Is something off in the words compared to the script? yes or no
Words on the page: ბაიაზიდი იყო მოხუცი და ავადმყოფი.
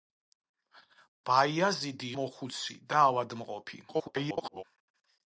yes